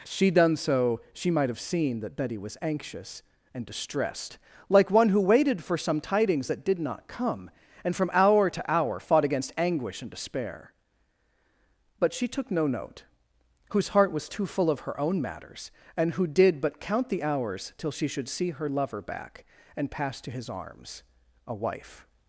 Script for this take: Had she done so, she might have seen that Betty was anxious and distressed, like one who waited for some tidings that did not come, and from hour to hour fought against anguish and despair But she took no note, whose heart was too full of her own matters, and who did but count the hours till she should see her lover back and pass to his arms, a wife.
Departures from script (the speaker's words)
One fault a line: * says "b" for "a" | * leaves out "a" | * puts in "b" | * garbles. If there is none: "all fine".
* leaves out "Had"